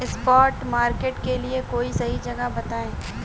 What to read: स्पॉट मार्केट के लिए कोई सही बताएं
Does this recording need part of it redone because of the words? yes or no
yes